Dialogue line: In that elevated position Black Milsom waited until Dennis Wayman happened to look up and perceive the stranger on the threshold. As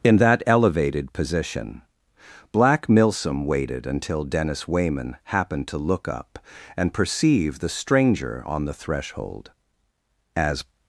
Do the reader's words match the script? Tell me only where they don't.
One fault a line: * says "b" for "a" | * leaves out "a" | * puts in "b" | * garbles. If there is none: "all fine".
all fine